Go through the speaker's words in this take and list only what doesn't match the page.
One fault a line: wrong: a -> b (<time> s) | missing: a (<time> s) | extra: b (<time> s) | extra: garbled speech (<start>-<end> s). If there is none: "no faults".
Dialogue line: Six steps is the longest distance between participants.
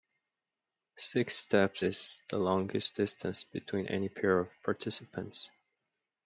extra: any pair of (3.9 s)